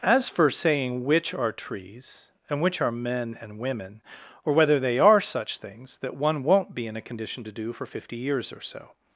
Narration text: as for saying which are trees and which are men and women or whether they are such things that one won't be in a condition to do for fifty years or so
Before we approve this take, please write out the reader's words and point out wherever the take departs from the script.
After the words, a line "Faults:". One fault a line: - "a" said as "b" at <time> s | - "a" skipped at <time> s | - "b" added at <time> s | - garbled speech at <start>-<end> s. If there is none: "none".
as for saying which are trees and which are men and women or whether they are such things that one won't be in a condition to do for fifty years or so
Faults:
none